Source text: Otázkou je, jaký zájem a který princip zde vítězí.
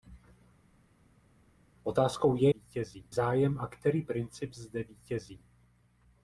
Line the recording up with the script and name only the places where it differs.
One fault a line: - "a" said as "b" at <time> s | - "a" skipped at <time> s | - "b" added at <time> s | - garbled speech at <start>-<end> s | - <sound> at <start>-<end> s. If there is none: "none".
- "jaký" said as "vítězí" at 2.5 s